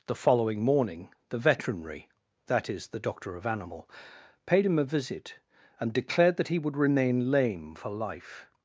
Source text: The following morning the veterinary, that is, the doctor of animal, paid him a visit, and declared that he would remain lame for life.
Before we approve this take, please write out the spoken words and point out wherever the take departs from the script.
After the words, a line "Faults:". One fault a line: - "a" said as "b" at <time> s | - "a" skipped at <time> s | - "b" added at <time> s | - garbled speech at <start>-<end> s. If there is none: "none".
The following morning the veterinary, that is, the doctor of animal, paid him a visit, and declared that he would remain lame for life.
Faults:
none